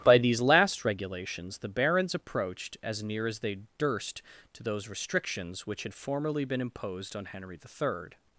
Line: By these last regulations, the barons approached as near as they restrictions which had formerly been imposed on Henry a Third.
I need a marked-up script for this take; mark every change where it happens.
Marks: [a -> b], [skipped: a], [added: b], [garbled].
By these last regulations, the barons approached as near as they [added: durst to those] restrictions which had formerly been imposed on Henry [a -> the] Third.